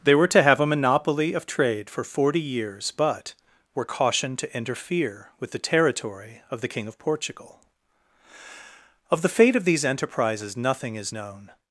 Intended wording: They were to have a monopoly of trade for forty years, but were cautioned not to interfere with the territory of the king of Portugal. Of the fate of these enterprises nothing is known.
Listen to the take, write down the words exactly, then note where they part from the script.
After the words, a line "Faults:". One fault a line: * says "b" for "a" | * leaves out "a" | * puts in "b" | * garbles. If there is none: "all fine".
They were to have a monopoly of trade for forty years, but were cautioned to interfere with the territory of the king of Portugal. Of the fate of these enterprises nothing is known.
Faults:
* leaves out "not"